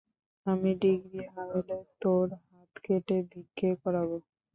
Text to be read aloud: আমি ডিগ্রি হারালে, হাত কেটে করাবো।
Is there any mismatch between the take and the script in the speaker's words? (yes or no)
yes